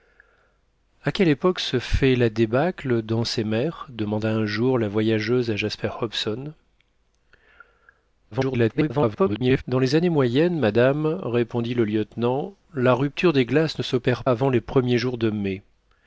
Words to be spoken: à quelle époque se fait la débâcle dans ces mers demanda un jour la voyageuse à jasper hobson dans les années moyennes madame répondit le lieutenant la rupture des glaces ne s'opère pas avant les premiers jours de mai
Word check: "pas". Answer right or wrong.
wrong